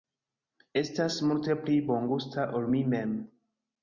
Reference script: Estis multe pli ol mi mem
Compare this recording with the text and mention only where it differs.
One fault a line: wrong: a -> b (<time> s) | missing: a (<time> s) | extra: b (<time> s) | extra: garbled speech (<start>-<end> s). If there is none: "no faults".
wrong: Estis -> Estas (0.8 s)
extra: bongusta (1.9 s)